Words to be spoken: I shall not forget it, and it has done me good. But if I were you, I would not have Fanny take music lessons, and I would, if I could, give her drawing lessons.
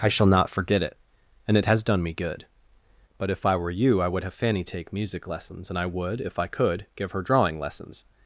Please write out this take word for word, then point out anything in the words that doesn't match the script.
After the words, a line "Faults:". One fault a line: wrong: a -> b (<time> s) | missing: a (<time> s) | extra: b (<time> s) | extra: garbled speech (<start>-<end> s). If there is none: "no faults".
I shall not forget it, and it has done me good. But if I were you, I would have Fanny take music lessons, and I would, if I could, give her drawing lessons.
Faults:
missing: not (4.2 s)